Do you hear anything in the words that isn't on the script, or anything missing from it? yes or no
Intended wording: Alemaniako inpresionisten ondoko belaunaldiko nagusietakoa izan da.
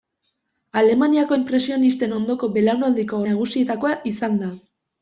no